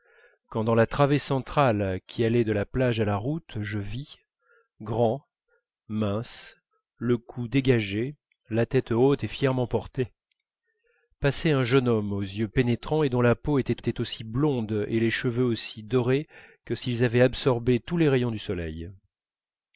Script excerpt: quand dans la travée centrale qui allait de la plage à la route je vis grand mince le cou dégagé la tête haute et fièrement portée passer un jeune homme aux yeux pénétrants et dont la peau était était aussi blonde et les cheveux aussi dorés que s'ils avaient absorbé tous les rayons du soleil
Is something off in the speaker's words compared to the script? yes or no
no